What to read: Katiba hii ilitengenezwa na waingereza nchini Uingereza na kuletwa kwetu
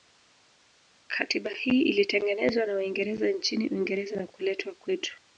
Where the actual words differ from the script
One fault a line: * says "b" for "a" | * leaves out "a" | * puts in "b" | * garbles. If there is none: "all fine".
all fine